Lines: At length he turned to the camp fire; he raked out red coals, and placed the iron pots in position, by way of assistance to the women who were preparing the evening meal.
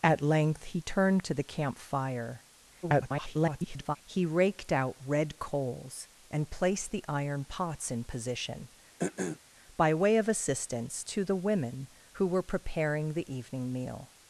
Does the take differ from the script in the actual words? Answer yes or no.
yes